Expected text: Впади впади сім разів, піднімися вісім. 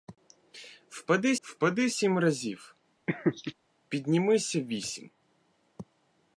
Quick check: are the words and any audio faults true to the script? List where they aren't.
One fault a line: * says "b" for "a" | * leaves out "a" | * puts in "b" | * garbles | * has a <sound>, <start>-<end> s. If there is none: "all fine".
* has a laugh, 3.1-3.5 s